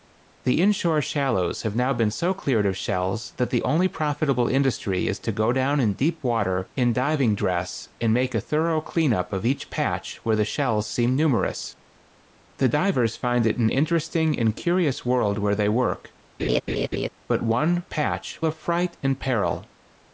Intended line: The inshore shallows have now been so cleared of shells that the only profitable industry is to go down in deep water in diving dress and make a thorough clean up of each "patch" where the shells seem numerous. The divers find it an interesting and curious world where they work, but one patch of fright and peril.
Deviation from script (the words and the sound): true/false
true